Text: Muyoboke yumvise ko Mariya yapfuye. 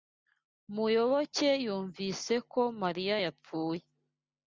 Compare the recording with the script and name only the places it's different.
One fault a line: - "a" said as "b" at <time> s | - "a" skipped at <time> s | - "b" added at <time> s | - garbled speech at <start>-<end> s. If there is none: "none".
none